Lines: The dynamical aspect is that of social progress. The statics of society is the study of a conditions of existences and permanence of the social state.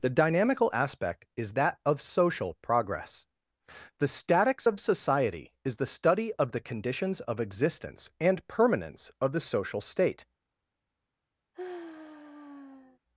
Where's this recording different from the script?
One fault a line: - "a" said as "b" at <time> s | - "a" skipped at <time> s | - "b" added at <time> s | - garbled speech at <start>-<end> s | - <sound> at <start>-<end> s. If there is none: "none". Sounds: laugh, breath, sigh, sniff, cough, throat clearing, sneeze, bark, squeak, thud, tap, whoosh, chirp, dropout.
- "a" said as "the" at 6.5 s
- "existences" said as "existence" at 7.4 s
- sigh at 11.5-13.0 s